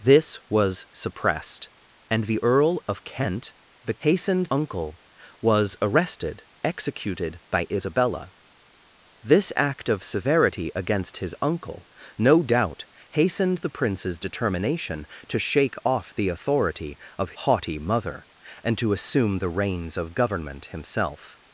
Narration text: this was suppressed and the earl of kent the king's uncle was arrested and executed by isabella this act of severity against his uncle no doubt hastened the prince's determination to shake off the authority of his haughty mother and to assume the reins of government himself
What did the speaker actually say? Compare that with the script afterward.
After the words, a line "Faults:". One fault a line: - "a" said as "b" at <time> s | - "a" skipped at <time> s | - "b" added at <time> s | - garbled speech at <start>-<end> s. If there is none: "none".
this was suppressed and the earl of kent the hastened uncle was arrested executed by isabella this act of severity against his uncle no doubt hastened the prince's determination to shake off the authority of haughty mother and to assume the reins of government himself
Faults:
- "king's" said as "hastened" at 4.0 s
- "and" skipped at 6.4 s
- "his" skipped at 17.4 s